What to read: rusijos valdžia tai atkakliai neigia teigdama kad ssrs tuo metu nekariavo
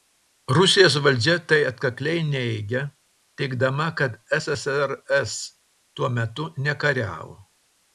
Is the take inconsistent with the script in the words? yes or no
no